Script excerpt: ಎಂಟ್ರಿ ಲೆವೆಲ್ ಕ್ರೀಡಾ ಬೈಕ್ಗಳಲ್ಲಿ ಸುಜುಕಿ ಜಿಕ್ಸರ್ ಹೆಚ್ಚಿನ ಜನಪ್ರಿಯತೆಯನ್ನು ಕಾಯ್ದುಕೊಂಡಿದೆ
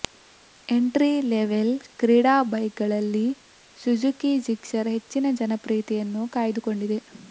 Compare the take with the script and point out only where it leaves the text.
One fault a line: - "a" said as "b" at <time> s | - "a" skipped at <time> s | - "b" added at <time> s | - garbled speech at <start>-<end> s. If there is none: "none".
none